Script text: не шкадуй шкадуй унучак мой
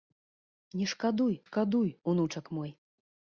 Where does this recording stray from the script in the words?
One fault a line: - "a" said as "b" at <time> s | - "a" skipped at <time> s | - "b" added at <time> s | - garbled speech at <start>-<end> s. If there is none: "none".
none